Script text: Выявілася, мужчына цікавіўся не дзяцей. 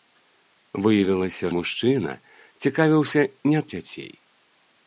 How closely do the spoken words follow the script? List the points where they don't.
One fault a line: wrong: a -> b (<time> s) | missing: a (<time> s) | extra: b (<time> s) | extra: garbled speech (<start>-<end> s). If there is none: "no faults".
no faults